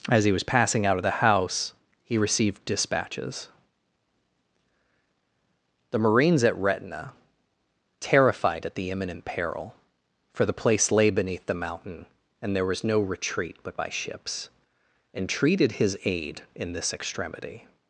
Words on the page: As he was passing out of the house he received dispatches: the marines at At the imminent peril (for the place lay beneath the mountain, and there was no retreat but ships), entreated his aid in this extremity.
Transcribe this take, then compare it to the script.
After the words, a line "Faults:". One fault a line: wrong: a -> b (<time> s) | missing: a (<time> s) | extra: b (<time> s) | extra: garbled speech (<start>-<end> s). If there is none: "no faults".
As he was passing out of the house he received dispatches: the marines at Retina, terrified at the imminent peril (for the place lay beneath the mountain, and there was no retreat but by ships), entreated his aid in this extremity.
Faults:
extra: Retina terrified (6.6 s)
extra: by (13.7 s)